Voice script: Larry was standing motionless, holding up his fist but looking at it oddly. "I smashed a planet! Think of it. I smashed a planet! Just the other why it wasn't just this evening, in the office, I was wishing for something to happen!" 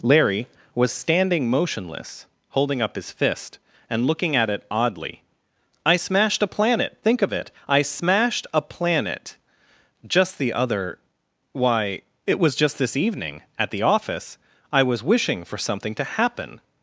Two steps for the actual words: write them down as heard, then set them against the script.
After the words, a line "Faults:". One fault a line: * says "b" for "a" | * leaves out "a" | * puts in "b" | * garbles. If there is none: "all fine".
Larry was standing motionless, holding up his fist and looking at it oddly. "I smashed a planet! Think of it. I smashed a planet! Just the other why it was just this evening, at the office, I was wishing for something to happen!"
Faults:
* says "and" for "but"
* says "was" for "wasn't"
* says "at" for "in"